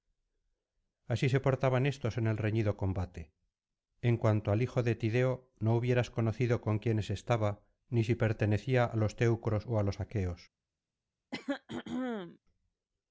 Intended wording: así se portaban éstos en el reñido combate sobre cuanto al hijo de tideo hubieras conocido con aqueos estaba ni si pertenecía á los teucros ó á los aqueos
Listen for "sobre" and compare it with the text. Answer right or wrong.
wrong